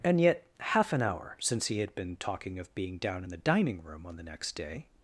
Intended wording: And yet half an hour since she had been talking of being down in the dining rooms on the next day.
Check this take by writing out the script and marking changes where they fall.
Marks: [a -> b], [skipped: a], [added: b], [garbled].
And yet half an hour since [she -> he] had been talking of being down in the dining [rooms -> room] on the next day.